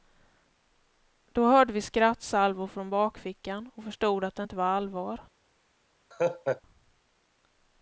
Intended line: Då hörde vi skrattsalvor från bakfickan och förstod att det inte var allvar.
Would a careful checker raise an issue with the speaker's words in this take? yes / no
no